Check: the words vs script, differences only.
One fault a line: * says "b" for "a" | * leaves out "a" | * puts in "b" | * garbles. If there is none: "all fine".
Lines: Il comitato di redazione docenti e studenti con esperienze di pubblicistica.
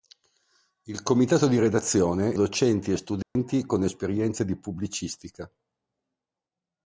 all fine